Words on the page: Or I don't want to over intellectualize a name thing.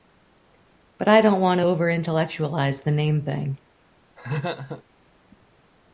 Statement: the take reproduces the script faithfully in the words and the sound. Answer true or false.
false